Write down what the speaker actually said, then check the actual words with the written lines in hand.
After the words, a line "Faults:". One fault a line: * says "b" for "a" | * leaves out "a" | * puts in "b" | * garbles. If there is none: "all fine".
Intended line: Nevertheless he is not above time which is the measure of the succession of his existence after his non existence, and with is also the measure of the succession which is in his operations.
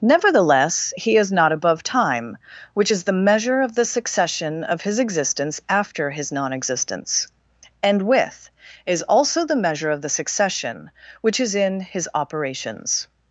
Nevertheless he is not above time which is the measure of the succession of his existence after his non existence, and with is also the measure of the succession which is in his operations.
Faults:
all fine